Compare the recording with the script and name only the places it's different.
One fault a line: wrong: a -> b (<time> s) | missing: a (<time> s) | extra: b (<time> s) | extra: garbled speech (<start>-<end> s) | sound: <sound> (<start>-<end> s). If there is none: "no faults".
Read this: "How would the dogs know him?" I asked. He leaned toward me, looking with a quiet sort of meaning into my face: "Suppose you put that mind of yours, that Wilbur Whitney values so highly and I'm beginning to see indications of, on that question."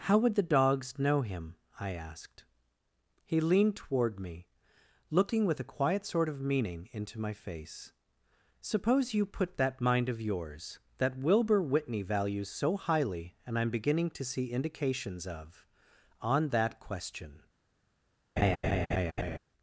sound: laugh (18.4-19.4 s)